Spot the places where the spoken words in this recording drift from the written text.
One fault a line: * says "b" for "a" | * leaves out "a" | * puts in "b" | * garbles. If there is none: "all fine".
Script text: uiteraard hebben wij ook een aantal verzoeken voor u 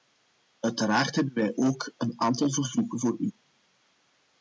all fine